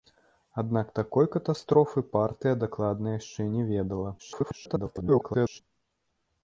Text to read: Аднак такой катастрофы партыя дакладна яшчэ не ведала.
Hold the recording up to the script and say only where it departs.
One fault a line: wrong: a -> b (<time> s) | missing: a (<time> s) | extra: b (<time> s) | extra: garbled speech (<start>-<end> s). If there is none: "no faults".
extra: garbled speech (4.2-5.6 s)